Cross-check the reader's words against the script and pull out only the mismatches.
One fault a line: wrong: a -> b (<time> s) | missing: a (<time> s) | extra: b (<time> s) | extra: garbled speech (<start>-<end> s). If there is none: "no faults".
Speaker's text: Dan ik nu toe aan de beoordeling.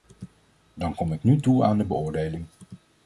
extra: kom (0.9 s)